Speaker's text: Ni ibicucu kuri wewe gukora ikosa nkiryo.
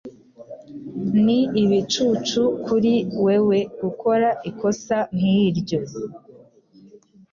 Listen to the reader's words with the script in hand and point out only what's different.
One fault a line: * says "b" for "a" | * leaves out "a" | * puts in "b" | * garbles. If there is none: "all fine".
all fine